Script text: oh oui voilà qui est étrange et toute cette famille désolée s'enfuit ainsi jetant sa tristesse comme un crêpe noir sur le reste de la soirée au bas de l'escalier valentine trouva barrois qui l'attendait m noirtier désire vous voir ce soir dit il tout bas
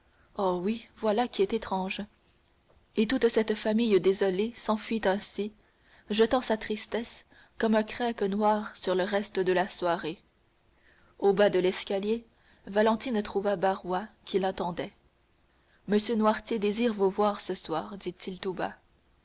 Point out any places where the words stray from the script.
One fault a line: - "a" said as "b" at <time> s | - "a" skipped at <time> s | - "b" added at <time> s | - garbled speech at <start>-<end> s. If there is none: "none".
none